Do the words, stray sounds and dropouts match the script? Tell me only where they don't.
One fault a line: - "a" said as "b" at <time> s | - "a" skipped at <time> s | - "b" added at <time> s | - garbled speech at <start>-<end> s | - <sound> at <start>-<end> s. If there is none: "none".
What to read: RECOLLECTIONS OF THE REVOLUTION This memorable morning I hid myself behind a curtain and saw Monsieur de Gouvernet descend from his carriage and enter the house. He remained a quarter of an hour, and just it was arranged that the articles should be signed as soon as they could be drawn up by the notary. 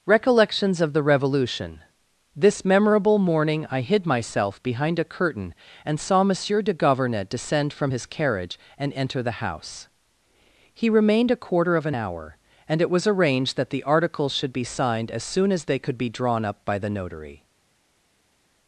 - "just" skipped at 12.8 s